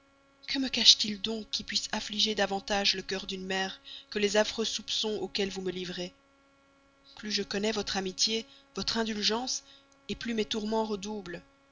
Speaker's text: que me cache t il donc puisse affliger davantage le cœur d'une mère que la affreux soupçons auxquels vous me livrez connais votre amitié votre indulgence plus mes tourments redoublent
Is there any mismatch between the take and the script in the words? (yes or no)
yes